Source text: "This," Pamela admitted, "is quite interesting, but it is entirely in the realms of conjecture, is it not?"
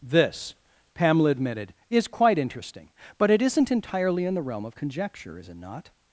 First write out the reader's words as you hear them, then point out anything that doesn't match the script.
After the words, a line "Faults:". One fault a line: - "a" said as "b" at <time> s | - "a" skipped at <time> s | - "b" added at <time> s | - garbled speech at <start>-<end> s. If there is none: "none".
"This," Pamela admitted, "is quite interesting, but it isn't entirely in the realm of conjecture, is it not?"
Faults:
- "is" said as "isn't" at 3.4 s
- "realms" said as "realm" at 4.4 s